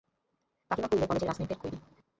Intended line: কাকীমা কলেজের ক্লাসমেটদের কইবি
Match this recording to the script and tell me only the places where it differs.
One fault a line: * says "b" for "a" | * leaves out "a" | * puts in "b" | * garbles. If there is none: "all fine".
* puts in "কইল"